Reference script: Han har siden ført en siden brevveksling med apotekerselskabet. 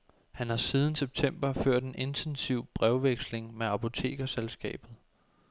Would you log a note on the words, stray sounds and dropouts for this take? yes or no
yes